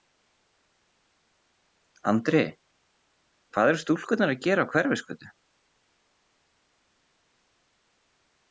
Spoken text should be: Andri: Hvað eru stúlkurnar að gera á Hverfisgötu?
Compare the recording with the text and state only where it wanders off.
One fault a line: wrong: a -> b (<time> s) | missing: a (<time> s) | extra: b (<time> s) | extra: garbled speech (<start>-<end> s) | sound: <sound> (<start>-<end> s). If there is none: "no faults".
no faults